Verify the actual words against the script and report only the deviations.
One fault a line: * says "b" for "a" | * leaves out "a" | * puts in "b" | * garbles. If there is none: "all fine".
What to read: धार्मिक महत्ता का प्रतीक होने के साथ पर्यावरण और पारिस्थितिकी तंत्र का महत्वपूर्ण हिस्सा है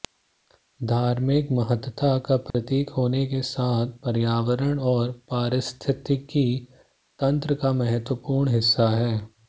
all fine